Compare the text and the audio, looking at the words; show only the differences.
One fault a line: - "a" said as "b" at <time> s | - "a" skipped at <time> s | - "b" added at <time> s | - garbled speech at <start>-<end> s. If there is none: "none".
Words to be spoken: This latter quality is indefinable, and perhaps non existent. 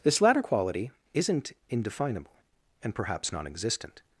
- "is" said as "isn't" at 1.1 s